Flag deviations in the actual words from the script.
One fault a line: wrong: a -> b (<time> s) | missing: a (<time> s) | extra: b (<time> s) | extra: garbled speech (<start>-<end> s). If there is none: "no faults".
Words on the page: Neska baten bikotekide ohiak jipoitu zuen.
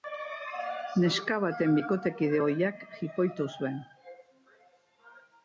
no faults